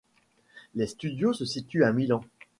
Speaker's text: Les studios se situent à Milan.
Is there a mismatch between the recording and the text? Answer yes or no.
no